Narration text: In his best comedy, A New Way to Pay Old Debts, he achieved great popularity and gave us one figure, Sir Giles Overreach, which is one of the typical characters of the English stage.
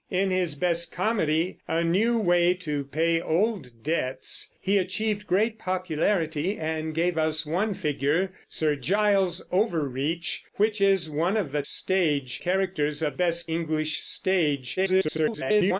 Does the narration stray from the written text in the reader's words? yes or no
yes